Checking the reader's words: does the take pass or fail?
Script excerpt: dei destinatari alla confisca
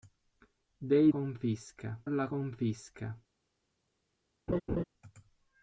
fail